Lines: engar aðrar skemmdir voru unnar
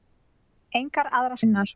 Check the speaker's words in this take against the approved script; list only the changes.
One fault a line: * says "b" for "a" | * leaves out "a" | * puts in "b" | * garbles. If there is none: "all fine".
* leaves out "skemmdir voru"